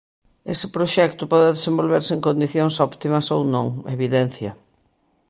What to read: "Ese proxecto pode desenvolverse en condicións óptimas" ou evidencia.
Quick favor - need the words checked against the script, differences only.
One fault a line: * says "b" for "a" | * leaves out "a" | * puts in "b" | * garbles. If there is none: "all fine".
* puts in "non"